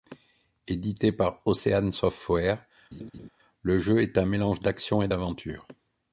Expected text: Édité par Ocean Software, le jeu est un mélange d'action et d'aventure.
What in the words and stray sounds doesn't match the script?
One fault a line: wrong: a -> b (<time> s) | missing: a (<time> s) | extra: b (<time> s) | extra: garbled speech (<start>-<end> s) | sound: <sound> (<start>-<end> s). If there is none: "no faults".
sound: laugh (2.9-3.3 s)